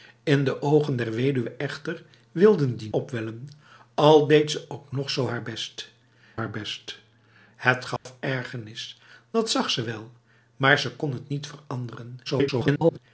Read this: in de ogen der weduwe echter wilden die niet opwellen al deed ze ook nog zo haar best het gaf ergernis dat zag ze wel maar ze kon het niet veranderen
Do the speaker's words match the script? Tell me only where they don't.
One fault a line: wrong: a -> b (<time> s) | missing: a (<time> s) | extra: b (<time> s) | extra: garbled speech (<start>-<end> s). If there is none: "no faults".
missing: niet (2.9 s)
extra: haar best (6.3 s)
extra: garbled speech (12.2-13.0 s)